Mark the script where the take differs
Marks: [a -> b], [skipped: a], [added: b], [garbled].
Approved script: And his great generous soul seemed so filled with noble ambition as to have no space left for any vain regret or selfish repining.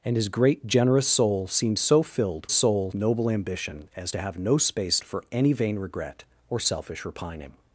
And his great generous soul seemed so filled [with -> soul] noble ambition as to have no space [skipped: left] for any vain regret or selfish repining.